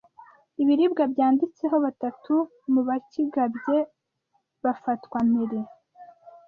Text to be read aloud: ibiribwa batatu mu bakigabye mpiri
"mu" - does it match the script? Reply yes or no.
yes